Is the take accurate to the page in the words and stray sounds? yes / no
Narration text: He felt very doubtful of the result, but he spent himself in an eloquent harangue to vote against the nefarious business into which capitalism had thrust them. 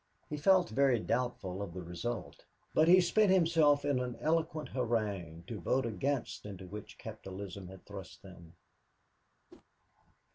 no